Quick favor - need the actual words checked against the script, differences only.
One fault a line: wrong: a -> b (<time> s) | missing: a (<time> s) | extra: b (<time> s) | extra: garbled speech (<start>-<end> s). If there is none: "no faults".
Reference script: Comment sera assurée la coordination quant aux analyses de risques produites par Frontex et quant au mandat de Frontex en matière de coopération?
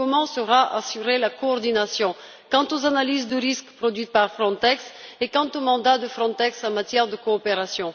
no faults